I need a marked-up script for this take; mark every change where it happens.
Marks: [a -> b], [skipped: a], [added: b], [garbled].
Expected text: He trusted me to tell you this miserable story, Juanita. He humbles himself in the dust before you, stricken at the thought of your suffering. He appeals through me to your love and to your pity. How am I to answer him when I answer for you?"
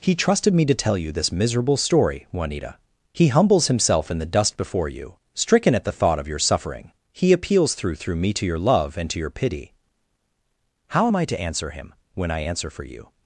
He trusted me to tell you this miserable story, Juanita. He humbles himself in the dust before you, stricken at the thought of your suffering. He appeals through [added: through] me to your love and to your pity. How am I to answer him when I answer for you?"